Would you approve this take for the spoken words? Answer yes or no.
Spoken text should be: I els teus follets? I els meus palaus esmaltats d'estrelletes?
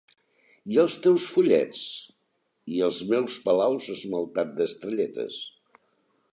yes